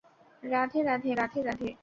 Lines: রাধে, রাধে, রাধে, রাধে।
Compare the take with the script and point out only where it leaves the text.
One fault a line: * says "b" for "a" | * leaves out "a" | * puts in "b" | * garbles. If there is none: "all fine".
all fine